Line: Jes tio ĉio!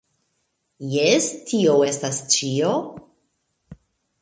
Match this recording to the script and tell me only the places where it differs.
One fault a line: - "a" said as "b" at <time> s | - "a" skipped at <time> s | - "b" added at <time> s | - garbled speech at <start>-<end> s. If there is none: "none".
- "estas" added at 1.9 s